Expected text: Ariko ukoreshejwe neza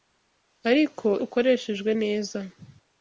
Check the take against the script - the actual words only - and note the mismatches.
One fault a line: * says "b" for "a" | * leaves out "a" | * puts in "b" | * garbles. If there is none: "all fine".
all fine